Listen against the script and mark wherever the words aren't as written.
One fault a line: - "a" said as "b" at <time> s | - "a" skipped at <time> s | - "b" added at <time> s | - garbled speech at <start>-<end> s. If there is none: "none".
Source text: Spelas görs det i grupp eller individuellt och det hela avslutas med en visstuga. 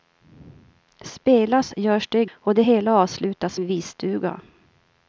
- "grupp eller individuellt" skipped at 2.2 s
- "med" skipped at 3.6 s